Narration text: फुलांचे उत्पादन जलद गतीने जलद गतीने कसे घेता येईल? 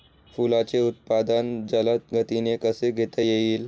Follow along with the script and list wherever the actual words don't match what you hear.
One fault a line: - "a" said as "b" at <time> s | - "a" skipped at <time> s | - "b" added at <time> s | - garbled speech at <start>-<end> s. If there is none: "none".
- "जलद गतीने" skipped at 2.5 s